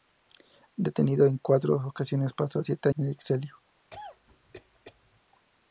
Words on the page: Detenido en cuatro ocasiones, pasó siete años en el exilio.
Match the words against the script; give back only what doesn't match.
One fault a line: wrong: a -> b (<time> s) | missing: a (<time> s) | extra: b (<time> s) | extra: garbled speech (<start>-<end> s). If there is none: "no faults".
missing: años (2.9 s)